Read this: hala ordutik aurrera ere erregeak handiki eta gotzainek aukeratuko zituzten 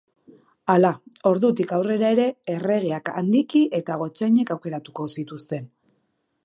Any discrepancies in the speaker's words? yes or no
no